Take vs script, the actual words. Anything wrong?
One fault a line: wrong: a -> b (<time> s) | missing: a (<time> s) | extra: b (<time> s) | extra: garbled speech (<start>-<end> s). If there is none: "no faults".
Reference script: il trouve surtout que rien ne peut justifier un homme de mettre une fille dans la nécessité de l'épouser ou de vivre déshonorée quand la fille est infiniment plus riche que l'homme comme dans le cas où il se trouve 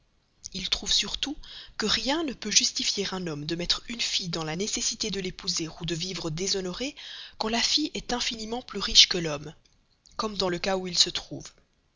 no faults